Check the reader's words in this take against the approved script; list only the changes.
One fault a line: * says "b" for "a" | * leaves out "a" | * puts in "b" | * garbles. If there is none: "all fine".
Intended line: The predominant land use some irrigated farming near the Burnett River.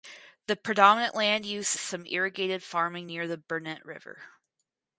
all fine